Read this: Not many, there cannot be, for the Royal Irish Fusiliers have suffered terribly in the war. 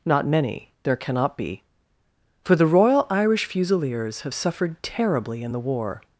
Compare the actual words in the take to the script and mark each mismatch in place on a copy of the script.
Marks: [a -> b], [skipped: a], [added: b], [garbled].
Not many, there cannot be, for the Royal Irish Fusiliers have suffered terribly in the war.